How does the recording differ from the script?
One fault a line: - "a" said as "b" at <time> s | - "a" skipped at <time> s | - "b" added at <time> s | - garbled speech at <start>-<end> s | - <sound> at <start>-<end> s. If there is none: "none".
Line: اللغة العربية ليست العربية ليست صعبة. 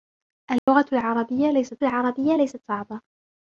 - dropout at 0.6-0.7 s